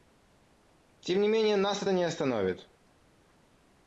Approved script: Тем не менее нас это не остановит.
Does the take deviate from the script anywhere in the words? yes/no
no